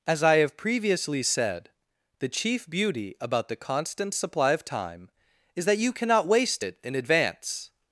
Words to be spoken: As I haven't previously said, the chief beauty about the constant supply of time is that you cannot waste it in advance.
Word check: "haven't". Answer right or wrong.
wrong